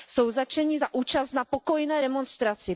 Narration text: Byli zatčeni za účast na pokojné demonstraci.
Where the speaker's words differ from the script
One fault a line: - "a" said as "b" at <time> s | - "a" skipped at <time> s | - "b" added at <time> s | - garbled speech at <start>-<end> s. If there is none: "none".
- "Byli" said as "Jsou" at 0.1 s